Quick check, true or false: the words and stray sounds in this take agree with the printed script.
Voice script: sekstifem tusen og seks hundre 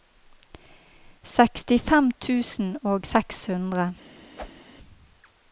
false